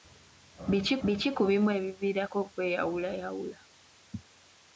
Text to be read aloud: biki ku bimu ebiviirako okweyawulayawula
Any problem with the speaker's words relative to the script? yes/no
yes